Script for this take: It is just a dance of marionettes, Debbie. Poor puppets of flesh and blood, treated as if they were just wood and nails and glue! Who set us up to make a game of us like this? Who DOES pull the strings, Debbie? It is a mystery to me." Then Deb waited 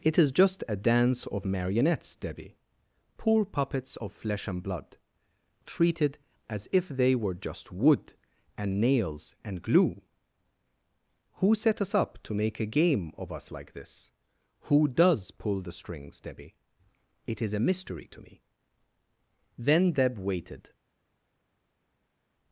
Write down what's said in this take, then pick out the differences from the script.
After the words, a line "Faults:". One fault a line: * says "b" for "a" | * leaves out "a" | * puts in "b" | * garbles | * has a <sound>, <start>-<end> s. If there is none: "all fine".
It is just a dance of marionettes, Debbie. Poor puppets of flesh and blood, treated as if they were just wood and nails and glue! Who set us up to make a game of us like this? Who DOES pull the strings, Debbie? It is a mystery to me." Then Deb waited
Faults:
all fine